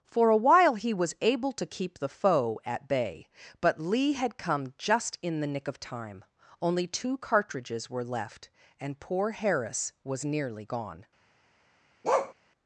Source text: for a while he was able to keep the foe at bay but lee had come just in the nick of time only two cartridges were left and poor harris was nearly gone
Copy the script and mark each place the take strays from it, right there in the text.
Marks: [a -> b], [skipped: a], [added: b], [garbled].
for a while he was able to keep the foe at bay but lee had come just in the nick of time only two cartridges were left and poor harris was nearly gone